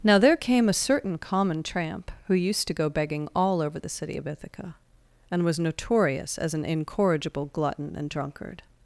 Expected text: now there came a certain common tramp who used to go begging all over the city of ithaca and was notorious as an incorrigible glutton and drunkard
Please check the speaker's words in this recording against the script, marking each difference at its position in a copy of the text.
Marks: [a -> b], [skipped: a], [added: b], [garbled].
now there came a certain common tramp who used to go begging all over the city of ithaca and was notorious as an incorrigible glutton and drunkard